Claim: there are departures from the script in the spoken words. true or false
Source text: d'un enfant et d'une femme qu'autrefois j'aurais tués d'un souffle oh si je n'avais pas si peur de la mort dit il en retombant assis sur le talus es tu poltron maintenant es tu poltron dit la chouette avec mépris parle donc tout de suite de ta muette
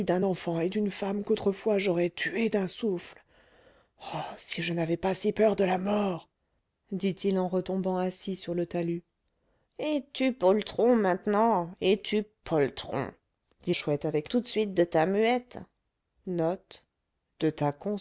true